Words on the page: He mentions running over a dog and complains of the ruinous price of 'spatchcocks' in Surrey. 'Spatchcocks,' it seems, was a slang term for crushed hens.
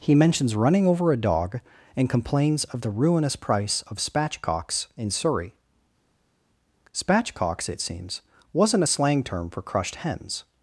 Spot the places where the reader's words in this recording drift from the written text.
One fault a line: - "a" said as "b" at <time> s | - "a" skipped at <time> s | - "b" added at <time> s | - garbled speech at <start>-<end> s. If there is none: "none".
- "was" said as "wasn't" at 8.5 s